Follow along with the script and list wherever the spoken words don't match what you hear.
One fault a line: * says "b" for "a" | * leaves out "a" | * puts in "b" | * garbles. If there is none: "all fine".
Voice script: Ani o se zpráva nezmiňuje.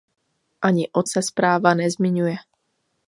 all fine